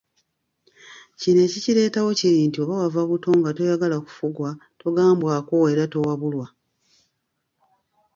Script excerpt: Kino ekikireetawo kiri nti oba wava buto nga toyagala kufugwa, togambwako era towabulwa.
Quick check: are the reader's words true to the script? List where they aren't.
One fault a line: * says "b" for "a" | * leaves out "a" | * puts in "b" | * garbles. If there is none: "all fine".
all fine